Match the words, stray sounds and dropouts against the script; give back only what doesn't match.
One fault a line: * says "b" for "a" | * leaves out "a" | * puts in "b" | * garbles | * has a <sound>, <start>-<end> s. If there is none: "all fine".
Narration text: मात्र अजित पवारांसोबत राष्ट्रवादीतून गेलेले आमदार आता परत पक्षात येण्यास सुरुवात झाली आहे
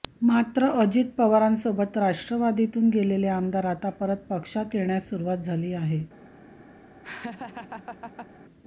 * has a laugh, 7.0-8.3 s